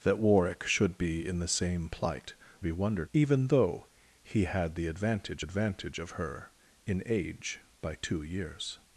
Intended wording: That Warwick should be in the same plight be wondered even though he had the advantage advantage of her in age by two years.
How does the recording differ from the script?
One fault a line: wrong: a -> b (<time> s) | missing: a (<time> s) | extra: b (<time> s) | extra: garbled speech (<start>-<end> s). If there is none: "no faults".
no faults